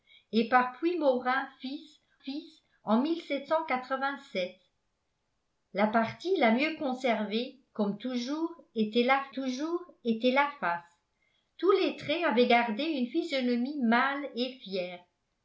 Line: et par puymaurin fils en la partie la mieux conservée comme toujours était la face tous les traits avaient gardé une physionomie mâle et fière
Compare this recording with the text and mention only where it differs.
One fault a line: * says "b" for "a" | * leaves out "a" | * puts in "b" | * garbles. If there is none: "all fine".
* puts in "fils"
* puts in "toujours était la"